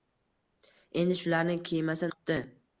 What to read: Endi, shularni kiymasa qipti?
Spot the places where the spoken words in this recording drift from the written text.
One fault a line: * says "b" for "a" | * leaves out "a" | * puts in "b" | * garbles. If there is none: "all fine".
all fine